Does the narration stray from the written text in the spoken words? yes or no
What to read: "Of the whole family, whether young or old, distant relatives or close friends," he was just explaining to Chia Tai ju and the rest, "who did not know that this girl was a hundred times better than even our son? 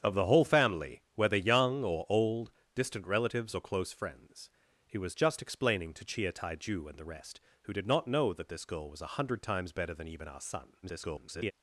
yes